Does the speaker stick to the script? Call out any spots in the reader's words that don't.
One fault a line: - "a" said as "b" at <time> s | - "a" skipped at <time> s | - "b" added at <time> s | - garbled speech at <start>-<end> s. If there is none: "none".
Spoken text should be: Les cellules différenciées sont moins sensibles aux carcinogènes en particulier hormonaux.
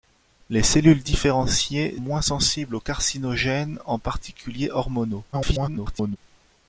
- "sont" skipped at 2.0 s
- garbled speech at 5.3-6.2 s